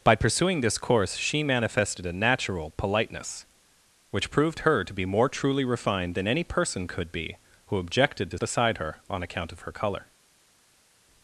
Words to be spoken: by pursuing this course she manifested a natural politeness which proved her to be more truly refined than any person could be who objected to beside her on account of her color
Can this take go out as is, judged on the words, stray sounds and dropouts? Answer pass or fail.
pass